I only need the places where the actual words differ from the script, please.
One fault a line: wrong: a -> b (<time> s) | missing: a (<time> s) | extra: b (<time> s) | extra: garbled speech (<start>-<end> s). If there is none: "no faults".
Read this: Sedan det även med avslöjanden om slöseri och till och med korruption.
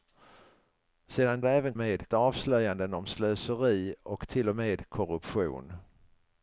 no faults